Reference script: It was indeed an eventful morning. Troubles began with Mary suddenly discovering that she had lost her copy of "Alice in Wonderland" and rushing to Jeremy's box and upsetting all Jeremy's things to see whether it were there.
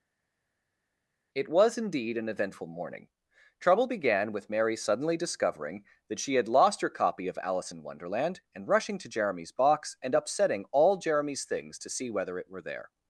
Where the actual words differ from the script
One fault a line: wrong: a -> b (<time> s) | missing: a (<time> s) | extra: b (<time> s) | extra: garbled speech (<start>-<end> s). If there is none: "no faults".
wrong: Troubles -> Trouble (3.6 s)